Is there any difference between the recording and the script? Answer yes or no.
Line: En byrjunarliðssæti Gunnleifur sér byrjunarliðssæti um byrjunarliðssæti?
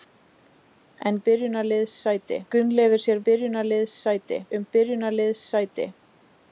no